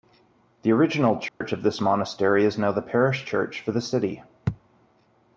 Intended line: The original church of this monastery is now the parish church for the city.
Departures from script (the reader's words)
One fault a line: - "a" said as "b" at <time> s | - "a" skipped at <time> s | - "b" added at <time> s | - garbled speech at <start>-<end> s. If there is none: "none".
none